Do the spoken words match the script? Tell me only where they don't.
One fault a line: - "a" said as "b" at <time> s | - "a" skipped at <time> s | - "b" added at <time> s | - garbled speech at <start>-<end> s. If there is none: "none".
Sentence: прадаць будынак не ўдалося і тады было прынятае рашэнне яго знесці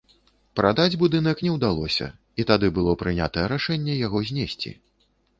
none